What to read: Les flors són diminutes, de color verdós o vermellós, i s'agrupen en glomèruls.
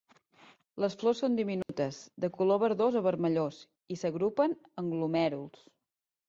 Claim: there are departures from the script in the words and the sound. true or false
true